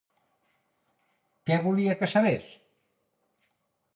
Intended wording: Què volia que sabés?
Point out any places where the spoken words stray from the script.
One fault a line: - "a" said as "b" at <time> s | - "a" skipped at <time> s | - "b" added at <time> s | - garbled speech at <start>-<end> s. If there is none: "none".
none